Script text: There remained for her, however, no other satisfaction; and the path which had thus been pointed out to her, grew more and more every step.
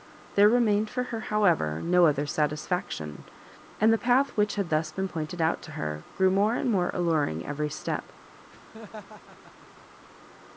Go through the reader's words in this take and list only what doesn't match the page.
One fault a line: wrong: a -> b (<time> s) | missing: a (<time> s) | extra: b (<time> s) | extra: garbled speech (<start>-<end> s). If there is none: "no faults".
extra: alluring (6.9 s)